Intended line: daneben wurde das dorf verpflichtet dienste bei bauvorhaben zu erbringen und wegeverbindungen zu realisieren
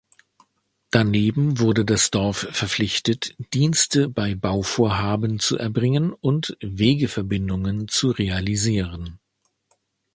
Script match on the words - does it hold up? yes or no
yes